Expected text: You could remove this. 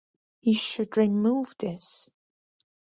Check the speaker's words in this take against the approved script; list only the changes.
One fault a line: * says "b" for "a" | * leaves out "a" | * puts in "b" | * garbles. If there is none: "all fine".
* says "should" for "could"